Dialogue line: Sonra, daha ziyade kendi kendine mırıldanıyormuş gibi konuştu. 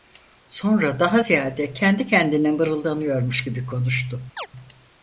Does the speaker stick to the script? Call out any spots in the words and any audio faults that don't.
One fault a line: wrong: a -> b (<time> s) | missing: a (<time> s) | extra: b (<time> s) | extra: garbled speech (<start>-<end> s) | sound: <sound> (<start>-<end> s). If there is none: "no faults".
sound: chirp (4.4-4.5 s)